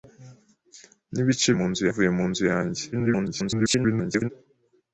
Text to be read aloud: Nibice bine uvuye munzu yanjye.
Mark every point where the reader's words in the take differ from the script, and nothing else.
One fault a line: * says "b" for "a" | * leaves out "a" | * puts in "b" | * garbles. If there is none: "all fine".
* says "munzu" for "bine"
* garbles